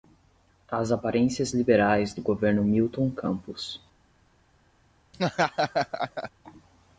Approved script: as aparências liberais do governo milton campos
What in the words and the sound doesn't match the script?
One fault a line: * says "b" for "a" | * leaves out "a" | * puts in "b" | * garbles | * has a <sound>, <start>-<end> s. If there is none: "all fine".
* has a laugh, 5.1-6.3 s